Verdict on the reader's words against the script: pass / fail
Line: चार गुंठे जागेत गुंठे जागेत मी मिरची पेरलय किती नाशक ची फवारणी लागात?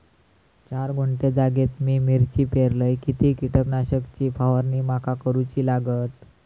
fail